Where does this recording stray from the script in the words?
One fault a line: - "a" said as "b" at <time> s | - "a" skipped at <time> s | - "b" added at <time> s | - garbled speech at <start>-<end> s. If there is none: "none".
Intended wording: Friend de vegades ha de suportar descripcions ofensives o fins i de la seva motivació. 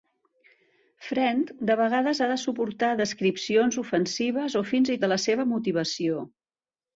none